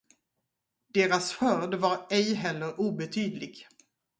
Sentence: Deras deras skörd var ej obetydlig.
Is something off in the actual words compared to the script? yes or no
yes